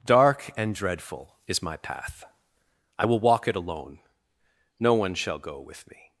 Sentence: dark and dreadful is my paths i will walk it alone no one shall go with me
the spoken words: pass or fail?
fail